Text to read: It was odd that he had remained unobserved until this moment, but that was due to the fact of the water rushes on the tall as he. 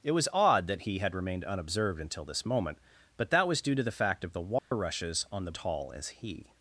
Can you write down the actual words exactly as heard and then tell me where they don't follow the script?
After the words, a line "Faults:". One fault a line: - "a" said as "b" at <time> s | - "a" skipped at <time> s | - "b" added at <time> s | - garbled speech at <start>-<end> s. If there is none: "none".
It was odd that he had remained unobserved until this moment, but that was due to the fact of the water rushes on the tall as he.
Faults:
none